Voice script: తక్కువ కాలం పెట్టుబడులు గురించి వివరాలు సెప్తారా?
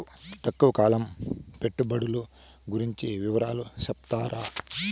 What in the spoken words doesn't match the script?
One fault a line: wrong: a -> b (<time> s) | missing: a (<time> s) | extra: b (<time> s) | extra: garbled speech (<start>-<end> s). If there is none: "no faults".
no faults